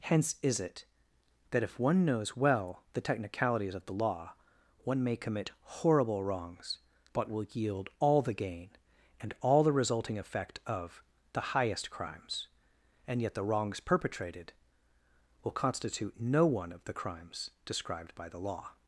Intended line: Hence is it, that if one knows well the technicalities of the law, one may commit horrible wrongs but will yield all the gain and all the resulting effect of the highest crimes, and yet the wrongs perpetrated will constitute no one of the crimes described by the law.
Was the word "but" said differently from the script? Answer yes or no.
no